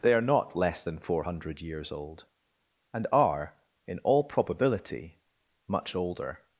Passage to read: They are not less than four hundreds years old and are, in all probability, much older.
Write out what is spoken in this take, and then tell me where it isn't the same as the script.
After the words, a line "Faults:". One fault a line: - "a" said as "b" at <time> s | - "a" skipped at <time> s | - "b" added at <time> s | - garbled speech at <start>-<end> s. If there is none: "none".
They are not less than four hundred years old and are, in all probability, much older.
Faults:
- "hundreds" said as "hundred" at 1.2 s